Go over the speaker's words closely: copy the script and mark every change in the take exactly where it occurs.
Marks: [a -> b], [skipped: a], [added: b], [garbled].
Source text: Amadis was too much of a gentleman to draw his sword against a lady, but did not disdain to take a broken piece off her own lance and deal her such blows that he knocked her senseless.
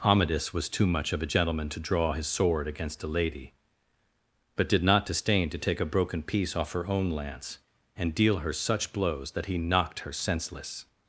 Amadis was too much of a gentleman to draw his sword against a lady, but did not disdain to take a broken piece off her own lance and deal her such blows that he knocked her senseless.